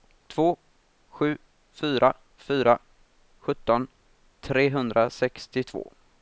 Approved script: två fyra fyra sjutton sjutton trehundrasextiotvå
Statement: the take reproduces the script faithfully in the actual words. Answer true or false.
false